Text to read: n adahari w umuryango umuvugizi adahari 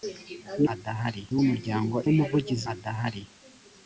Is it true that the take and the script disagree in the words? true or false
false